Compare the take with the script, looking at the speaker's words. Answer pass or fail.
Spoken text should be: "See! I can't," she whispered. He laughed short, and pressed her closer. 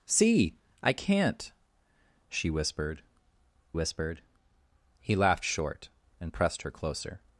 fail